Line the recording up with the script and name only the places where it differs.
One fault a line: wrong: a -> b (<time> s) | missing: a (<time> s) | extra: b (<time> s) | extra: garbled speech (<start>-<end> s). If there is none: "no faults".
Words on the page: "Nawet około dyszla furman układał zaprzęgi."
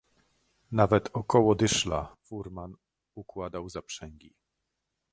no faults